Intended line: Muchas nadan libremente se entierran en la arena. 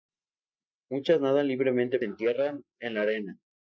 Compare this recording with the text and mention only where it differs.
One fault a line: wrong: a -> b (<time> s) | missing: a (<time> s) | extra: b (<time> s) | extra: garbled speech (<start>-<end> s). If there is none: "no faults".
no faults